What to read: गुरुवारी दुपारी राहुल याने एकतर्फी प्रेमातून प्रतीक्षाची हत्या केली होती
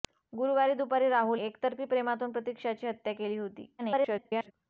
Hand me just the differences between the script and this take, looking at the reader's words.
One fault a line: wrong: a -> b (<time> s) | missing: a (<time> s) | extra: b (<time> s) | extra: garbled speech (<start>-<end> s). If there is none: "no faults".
missing: याने (1.4 s)
extra: garbled speech (3.8-4.5 s)